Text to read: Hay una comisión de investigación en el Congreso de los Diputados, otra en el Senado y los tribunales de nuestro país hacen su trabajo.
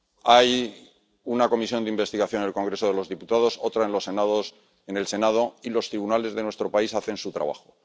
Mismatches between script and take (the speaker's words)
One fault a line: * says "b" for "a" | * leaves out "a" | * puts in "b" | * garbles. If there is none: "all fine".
all fine